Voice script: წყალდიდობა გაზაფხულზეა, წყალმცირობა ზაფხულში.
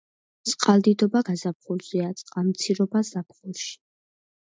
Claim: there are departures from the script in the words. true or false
false